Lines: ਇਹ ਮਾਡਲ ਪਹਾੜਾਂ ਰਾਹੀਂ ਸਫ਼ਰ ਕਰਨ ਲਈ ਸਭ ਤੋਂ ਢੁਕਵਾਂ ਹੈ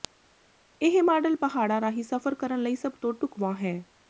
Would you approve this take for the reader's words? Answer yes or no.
yes